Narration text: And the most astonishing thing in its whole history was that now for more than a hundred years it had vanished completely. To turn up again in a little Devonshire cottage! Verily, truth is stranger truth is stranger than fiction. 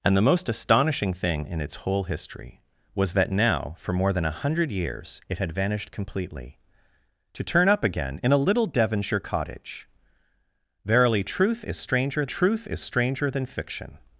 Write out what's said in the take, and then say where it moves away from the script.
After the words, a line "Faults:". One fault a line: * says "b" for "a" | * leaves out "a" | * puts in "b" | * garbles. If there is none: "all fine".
And the most astonishing thing in its whole history was that now for more than a hundred years it had vanished completely. To turn up again in a little Devonshire cottage! Verily, truth is stranger truth is stranger than fiction.
Faults:
all fine